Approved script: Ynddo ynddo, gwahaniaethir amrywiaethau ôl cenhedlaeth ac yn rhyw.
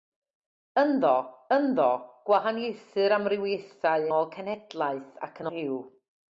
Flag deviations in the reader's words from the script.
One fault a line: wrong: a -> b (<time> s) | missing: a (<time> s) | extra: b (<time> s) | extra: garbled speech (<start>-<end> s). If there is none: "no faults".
no faults